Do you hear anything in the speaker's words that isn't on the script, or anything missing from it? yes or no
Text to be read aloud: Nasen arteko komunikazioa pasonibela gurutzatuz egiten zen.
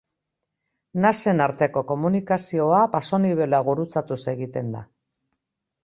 yes